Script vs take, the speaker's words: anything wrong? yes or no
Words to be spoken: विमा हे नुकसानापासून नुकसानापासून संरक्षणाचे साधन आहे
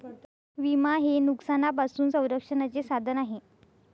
yes